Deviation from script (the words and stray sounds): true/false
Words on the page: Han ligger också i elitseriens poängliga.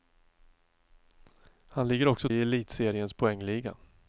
false